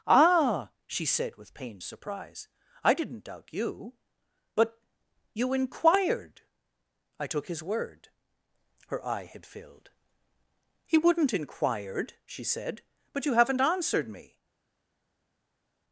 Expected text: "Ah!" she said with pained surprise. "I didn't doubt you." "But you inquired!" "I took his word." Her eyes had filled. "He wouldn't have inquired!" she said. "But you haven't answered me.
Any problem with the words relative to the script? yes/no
yes